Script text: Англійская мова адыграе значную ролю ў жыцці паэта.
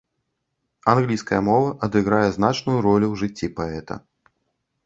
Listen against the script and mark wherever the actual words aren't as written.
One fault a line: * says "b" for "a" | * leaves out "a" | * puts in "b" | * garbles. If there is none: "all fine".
all fine